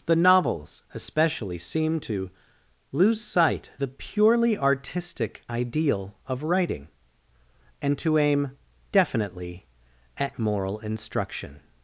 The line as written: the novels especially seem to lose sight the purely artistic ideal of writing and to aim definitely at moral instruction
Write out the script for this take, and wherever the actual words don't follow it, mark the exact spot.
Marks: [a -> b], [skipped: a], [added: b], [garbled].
the novels especially seem to lose sight the purely artistic ideal of writing and to aim definitely at moral instruction